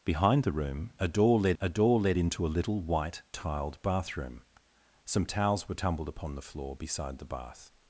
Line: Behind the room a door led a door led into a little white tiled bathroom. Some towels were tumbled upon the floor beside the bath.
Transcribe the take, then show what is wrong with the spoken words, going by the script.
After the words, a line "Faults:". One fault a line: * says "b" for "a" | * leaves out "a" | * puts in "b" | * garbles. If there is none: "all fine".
Behind the room a door led a door led into a little white tiled bathroom. Some towels were tumbled upon the floor beside the bath.
Faults:
all fine